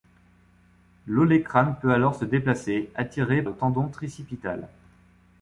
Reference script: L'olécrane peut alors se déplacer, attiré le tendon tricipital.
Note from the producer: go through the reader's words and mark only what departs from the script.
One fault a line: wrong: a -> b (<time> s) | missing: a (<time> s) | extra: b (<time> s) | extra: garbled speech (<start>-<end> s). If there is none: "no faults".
no faults